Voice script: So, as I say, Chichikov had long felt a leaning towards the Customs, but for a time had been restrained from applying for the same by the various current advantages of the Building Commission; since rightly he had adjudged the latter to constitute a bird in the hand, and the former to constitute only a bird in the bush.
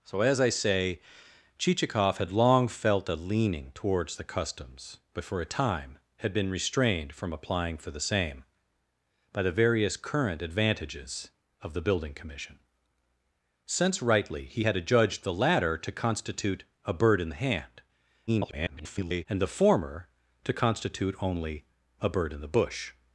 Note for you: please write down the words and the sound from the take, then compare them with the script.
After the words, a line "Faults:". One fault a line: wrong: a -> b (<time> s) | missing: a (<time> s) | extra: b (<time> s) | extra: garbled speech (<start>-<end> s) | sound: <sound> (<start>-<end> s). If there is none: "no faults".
So, as I say, Chichikov had long felt a leaning towards the Customs, but for a time had been restrained from applying for the same by the various current advantages of the Building Commission; since rightly he had adjudged the latter to constitute a bird in the hand, [garbled] and the former to constitute only a bird in the bush.
Faults:
extra: garbled speech (18.3-19.3 s)